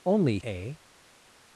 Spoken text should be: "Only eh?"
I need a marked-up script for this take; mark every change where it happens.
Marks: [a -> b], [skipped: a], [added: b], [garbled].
"Only eh?"